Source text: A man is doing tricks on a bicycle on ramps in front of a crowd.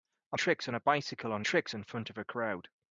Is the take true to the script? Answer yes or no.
no